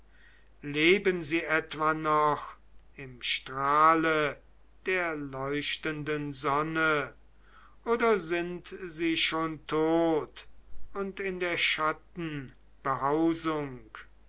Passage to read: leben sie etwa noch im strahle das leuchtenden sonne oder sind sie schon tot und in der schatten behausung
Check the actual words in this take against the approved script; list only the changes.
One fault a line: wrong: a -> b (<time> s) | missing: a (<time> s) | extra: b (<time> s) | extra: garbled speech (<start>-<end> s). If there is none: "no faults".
wrong: das -> der (4.8 s)